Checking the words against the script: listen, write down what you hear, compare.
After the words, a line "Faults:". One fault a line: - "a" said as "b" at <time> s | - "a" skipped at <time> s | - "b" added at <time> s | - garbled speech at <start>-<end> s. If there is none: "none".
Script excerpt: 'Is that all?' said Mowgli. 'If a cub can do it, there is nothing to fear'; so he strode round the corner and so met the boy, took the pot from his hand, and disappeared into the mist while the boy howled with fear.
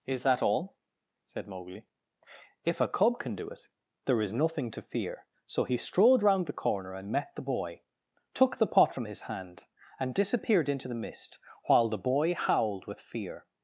'Is that all?' said Mowgli. 'If a cub can do it, there is nothing to fear'; so he strode round the corner and met the boy, took the pot from his hand, and disappeared into the mist while the boy howled with fear.
Faults:
- "so" skipped at 7.1 s